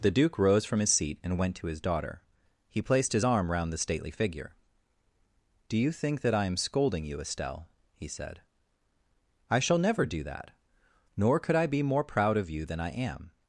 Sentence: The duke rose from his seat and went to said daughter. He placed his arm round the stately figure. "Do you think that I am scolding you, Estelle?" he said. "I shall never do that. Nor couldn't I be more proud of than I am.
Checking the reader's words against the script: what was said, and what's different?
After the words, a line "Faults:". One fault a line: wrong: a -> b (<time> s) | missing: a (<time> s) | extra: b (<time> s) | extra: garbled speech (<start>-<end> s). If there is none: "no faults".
The duke rose from his seat and went to his daughter. He placed his arm round the stately figure. "Do you think that I am scolding you, Estelle?" he said. "I shall never do that. Nor could I be more proud of you than I am.
Faults:
wrong: said -> his (1.7 s)
wrong: couldn't -> could (11.4 s)
extra: you (12.5 s)